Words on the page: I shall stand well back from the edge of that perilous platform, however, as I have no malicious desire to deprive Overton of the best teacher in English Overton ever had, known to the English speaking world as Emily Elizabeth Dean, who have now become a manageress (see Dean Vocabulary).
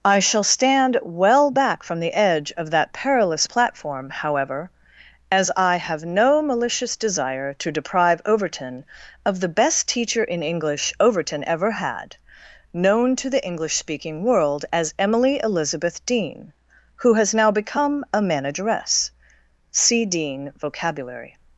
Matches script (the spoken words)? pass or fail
fail